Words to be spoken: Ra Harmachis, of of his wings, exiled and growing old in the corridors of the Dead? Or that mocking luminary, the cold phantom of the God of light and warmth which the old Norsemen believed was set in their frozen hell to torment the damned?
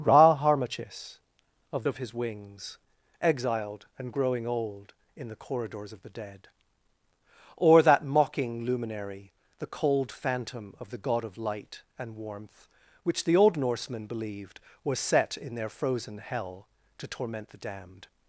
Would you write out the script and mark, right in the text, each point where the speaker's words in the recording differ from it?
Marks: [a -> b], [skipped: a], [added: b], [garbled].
Ra Harmachis, of of his wings, exiled and growing old in the corridors of the Dead? Or that mocking luminary, the cold phantom of the God of light and warmth which the old Norsemen believed was set in their frozen hell to torment the damned?